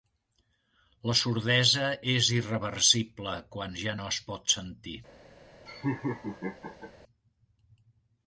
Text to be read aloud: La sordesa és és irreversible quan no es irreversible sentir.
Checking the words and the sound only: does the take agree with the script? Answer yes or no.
no